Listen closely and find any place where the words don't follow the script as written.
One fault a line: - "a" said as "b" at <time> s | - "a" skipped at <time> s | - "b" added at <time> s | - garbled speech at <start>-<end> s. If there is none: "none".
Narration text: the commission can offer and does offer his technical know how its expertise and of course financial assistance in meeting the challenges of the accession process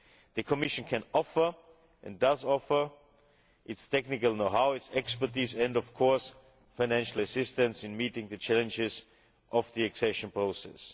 - "his" said as "its" at 3.6 s